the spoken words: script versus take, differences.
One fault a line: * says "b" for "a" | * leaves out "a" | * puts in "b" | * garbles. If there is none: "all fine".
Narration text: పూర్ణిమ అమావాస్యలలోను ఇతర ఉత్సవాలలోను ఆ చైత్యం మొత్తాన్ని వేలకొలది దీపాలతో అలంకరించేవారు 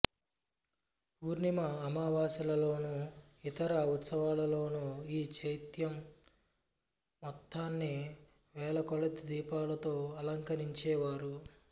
* says "ఈ" for "ఆ"